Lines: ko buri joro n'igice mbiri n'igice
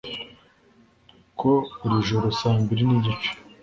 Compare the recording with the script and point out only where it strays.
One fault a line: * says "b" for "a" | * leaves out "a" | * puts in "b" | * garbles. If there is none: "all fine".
* says "saa" for "n'igice"